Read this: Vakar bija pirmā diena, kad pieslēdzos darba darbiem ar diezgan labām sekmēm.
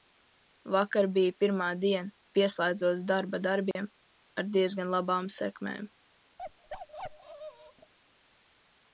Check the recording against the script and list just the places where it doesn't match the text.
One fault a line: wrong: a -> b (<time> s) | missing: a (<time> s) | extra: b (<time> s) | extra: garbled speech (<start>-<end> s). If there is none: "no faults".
missing: kad (2.1 s)